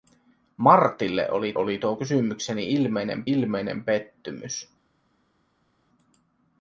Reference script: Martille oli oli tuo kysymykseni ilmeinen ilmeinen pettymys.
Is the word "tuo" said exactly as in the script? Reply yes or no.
yes